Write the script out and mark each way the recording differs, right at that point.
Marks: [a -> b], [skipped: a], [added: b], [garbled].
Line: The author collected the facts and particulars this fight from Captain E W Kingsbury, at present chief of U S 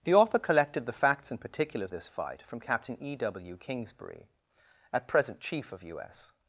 The author collected the facts and particulars this fight from Captain E W Kingsbury, at present chief of U S